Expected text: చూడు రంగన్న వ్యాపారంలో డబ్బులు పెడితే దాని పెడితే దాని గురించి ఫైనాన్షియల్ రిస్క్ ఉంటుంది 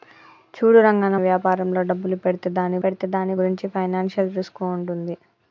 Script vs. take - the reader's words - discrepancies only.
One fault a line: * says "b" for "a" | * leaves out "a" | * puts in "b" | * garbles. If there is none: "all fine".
all fine